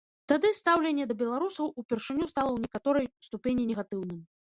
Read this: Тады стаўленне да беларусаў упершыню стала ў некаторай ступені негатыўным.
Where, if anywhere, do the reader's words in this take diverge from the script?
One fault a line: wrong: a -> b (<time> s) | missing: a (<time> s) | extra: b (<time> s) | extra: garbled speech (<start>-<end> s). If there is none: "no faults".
no faults